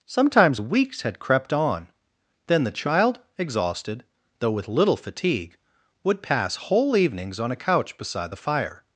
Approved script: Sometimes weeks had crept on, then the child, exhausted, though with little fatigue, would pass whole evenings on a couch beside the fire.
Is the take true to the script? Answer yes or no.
yes